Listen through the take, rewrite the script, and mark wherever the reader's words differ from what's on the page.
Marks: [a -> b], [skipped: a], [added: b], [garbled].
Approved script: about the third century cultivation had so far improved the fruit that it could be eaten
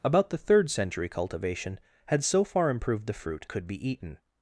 about the third century cultivation had so far improved the fruit [skipped: that it] could be eaten